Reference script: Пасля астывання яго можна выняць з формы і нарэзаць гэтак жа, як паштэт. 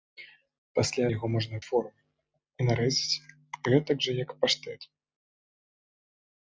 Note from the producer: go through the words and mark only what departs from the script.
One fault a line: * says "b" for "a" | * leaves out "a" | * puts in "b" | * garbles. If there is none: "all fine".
* leaves out "астывання"
* leaves out "выняць"